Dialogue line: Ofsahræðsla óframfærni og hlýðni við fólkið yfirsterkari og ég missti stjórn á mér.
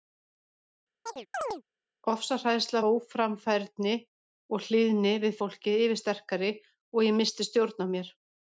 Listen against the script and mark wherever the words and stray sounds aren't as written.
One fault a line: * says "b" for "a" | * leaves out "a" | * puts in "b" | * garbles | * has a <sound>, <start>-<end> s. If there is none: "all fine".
* has a chirp, 1.1-1.6 s